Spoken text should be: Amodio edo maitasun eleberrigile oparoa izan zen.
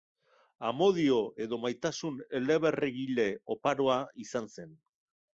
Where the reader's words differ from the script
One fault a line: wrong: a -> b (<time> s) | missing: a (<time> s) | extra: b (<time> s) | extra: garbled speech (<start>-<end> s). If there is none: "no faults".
no faults